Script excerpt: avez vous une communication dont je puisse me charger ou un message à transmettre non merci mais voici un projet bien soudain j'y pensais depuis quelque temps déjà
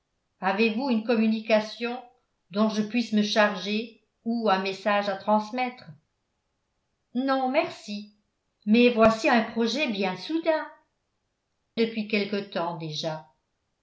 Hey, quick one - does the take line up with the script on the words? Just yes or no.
no